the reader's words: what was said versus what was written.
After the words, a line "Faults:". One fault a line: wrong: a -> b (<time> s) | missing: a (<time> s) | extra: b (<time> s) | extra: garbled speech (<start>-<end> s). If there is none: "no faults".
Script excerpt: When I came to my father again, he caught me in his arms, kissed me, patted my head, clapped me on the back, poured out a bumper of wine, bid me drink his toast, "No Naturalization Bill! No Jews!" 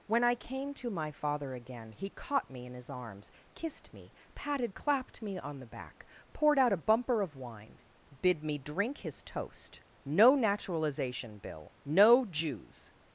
When I came to my father again, he caught me in his arms, kissed me, patted clapped me on the back, poured out a bumper of wine, bid me drink his toast, "No Naturalization Bill! No Jews!"
Faults:
missing: my head (4.7 s)